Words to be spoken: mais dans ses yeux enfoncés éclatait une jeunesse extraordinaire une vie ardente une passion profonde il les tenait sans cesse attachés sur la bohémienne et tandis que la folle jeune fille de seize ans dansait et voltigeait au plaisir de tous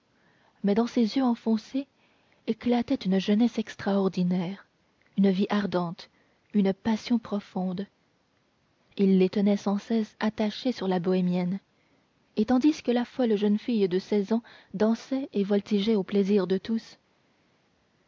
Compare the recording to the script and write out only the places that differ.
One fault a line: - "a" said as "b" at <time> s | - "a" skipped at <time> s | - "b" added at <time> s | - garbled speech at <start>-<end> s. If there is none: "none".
none